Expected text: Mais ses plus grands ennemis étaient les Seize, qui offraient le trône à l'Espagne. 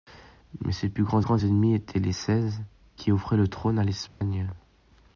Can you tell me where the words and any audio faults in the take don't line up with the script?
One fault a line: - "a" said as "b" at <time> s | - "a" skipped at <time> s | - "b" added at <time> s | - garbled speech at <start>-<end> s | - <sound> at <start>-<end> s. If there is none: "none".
- "grands" added at 1.2 s
- dropout at 4.1-4.2 s